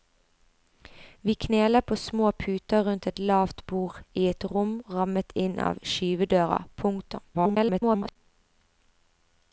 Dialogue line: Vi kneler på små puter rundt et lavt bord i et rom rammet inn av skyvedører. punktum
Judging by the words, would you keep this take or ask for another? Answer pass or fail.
fail